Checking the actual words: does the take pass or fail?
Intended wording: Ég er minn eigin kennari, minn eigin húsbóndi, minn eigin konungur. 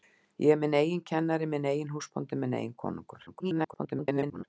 fail